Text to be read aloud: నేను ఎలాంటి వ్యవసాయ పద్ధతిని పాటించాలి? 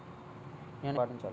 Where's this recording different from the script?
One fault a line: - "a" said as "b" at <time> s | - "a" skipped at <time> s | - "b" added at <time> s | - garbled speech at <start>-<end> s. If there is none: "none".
- "ఎలాంటి వ్యవసాయ పద్ధతిని" skipped at 1.0 s